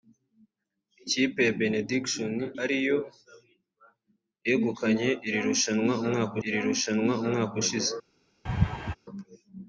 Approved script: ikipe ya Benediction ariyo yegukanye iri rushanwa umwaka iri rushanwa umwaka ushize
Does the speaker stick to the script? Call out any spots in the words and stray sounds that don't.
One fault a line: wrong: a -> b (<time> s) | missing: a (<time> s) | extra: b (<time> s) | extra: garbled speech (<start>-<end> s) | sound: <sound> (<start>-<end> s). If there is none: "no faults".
sound: laugh (8.5-9.0 s)